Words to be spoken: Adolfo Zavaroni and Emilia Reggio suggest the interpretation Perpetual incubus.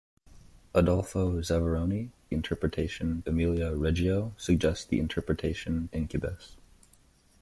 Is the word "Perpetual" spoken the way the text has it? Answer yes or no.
no